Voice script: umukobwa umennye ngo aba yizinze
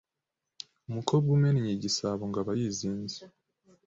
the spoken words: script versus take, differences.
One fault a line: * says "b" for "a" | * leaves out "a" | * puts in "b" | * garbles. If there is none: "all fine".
* puts in "igisabo"